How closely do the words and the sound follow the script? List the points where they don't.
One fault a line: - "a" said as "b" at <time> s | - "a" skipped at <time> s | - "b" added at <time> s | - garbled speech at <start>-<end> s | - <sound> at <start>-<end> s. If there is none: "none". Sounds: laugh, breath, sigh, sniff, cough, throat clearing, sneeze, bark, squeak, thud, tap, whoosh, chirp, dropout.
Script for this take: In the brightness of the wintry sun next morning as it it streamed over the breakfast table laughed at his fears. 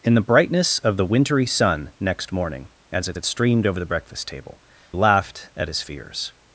none